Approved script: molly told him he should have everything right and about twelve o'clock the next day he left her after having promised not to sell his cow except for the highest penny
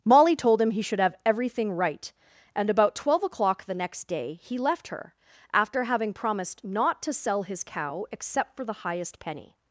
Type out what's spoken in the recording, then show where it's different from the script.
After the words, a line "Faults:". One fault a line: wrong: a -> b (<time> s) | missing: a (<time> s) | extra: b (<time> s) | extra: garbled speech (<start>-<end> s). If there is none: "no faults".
molly told him he should have everything right and about twelve o'clock the next day he left her after having promised not to sell his cow except for the highest penny
Faults:
no faults